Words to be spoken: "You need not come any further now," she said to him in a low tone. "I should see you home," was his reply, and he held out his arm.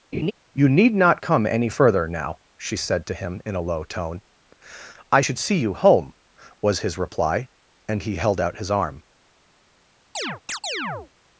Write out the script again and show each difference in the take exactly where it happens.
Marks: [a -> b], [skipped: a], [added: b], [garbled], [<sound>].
[laugh] "You need not come any further now," she said to him in a low tone. "I should see you home," was his reply, and he held out his arm. [chirp]